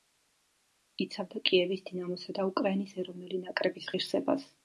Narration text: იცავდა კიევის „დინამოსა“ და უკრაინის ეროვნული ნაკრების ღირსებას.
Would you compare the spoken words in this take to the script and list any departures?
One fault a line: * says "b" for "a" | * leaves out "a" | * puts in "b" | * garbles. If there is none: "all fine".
all fine